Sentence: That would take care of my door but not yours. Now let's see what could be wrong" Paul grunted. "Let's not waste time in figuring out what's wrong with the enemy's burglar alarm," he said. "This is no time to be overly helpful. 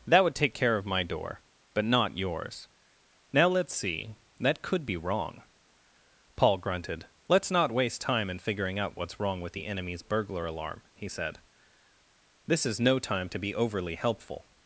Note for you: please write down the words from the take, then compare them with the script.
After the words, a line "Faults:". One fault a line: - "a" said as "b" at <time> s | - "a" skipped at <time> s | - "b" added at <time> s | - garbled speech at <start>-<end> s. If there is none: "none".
That would take care of my door but not yours. Now let's see that could be wrong" Paul grunted. "Let's not waste time in figuring out what's wrong with the enemy's burglar alarm," he said. "This is no time to be overly helpful.
Faults:
- "what" said as "that" at 4.4 s